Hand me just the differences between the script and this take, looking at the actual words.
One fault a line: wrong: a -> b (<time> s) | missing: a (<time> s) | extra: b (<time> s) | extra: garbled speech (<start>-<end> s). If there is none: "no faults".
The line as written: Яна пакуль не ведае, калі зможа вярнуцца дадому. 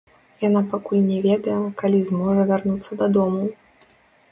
no faults